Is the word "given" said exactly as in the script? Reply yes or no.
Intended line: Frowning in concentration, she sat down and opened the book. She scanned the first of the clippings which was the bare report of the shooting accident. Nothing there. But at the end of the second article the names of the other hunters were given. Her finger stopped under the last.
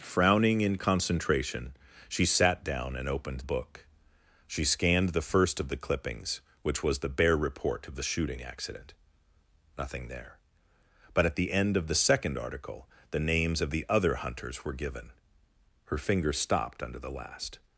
yes